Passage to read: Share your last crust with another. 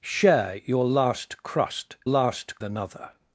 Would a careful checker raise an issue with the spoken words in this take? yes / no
yes